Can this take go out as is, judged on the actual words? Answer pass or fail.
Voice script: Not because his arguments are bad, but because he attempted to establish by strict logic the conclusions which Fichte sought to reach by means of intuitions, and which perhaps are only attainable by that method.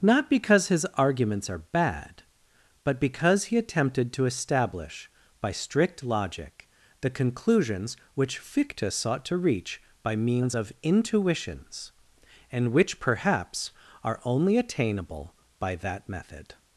pass